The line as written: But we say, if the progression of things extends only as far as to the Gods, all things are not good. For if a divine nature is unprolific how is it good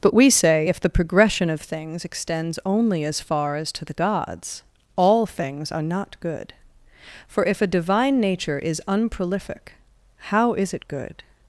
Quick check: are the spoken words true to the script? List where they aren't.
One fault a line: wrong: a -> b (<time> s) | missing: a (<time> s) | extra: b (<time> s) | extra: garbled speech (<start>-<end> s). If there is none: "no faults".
no faults